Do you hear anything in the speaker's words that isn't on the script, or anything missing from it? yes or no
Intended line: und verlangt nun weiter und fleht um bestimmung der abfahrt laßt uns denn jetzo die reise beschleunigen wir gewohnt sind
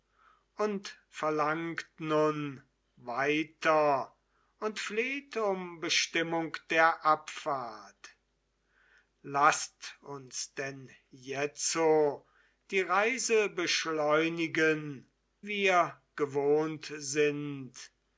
no